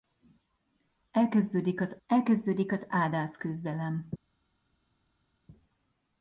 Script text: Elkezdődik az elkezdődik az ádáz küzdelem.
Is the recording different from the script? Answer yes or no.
no